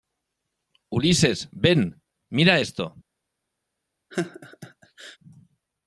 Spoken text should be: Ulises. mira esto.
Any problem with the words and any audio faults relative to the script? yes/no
yes